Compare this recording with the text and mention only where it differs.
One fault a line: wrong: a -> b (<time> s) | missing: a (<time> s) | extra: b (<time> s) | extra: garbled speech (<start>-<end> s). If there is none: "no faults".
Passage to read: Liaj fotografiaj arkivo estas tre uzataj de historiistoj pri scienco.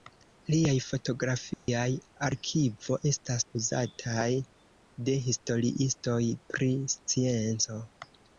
missing: tre (3.5 s)